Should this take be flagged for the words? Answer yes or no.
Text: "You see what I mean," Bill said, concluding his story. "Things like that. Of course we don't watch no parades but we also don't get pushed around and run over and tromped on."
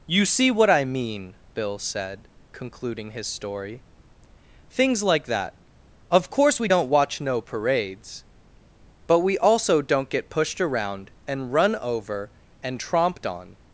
no